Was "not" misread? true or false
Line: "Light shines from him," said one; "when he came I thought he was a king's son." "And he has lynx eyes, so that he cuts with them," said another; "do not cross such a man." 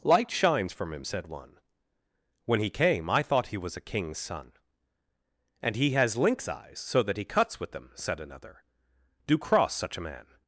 true